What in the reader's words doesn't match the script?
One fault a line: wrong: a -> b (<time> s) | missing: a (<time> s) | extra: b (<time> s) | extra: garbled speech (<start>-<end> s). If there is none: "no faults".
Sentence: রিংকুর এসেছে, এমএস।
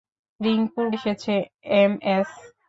no faults